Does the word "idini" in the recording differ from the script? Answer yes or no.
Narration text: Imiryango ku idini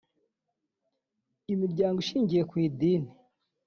no